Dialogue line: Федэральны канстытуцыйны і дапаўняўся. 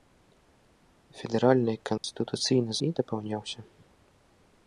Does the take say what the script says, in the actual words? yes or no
yes